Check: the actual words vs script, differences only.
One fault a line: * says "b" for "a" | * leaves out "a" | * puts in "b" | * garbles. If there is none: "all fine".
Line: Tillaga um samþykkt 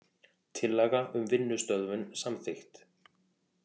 * puts in "vinnustöðvun"